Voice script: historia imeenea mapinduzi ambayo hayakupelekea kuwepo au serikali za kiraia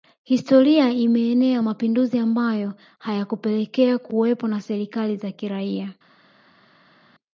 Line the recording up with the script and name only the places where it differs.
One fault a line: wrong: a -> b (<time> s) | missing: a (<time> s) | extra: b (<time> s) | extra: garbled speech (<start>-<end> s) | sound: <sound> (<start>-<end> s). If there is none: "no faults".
wrong: au -> na (4.5 s)